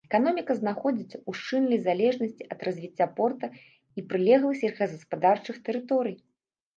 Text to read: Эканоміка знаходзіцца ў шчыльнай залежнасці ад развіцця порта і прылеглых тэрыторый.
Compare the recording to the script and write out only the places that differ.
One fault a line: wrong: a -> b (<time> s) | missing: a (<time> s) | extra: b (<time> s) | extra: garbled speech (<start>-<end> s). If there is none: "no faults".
extra: сельскагаспадарчых (4.6 s)